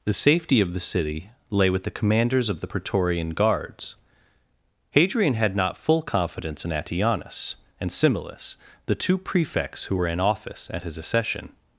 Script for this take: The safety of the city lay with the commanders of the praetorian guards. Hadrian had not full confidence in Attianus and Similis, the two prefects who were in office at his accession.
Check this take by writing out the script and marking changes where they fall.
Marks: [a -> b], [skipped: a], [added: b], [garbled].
The safety of the city lay with the commanders of the praetorian guards. Hadrian had not full confidence in Attianus and Similis, the two prefects who were in office at his accession.